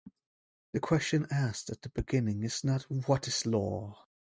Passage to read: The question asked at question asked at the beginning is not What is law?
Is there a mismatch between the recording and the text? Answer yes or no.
yes